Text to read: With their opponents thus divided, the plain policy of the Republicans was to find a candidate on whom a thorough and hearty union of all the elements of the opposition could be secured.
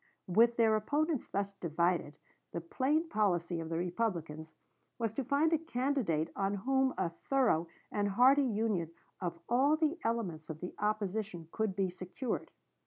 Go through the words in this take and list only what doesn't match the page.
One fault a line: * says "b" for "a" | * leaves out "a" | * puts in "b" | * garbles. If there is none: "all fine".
all fine